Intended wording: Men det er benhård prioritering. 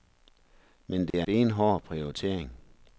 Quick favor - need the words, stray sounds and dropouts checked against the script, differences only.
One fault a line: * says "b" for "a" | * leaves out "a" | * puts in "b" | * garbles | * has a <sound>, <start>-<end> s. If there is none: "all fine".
* has a dropout, 1.1-1.1 s